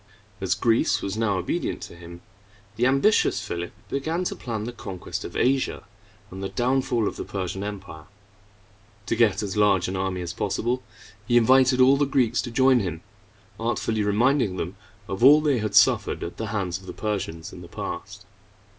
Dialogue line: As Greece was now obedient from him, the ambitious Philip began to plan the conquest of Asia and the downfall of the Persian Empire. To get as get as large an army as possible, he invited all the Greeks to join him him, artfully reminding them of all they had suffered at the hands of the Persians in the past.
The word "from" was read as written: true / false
false